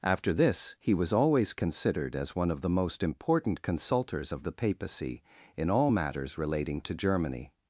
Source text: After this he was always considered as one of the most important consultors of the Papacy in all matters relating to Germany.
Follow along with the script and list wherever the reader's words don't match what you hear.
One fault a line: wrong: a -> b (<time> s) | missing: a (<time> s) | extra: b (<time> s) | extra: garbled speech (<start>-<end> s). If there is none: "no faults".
no faults